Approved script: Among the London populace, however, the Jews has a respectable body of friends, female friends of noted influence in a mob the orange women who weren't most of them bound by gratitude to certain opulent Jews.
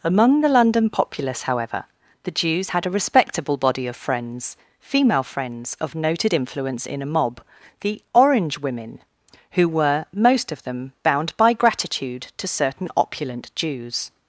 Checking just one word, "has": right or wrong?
wrong